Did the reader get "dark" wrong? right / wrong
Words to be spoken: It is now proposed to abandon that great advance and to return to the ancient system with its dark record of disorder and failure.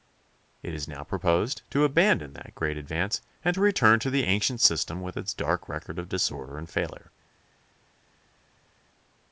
right